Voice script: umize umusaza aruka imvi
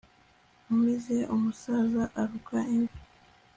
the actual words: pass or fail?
pass